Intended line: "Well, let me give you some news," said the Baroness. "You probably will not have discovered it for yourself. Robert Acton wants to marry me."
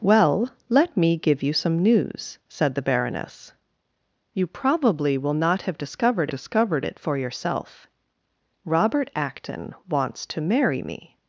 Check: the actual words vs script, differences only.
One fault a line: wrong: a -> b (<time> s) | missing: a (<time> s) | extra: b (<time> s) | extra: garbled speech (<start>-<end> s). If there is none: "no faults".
extra: discovered (6.3 s)